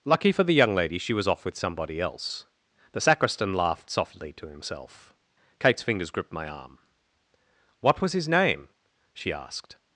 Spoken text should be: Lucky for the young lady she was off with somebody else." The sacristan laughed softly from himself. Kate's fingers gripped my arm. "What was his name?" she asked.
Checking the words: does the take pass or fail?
fail